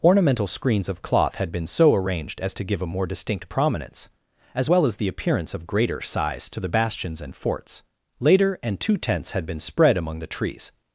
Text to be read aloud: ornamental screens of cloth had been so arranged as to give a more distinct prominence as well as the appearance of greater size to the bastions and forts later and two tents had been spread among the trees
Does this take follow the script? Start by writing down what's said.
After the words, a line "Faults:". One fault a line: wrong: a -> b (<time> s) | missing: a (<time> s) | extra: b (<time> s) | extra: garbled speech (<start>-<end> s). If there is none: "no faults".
ornamental screens of cloth had been so arranged as to give a more distinct prominence as well as the appearance of greater size to the bastions and forts later and two tents had been spread among the trees
Faults:
no faults